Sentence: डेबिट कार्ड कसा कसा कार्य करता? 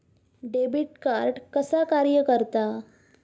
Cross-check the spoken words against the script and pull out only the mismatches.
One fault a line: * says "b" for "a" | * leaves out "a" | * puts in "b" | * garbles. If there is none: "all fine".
* leaves out "कसा"